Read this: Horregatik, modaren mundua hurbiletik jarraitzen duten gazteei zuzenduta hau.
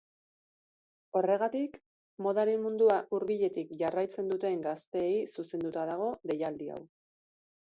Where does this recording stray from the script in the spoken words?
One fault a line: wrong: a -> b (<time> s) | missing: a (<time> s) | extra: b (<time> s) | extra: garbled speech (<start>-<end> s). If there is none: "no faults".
extra: dago deialdi (5.9 s)